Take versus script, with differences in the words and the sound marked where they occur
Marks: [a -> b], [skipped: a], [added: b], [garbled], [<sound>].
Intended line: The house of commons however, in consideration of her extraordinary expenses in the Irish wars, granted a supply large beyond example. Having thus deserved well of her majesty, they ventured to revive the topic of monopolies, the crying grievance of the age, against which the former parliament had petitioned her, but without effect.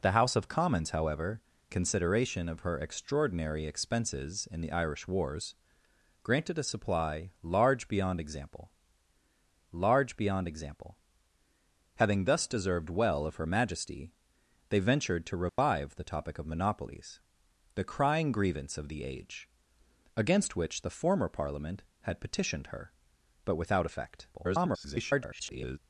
The house of commons however, [skipped: in] consideration of her extraordinary expenses in the Irish wars, granted a supply large beyond example. [added: large beyond example] Having thus deserved well of her majesty, they ventured to revive [dropout] the topic of monopolies, the crying grievance of the age, against which the former parliament had petitioned her, but without effect. [garbled]